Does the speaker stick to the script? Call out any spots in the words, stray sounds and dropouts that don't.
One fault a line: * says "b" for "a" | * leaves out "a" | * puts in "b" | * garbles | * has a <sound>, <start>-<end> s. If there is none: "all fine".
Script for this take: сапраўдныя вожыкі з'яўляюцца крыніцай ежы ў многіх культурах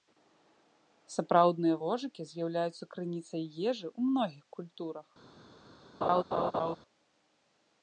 * has a laugh, 6.0-6.8 s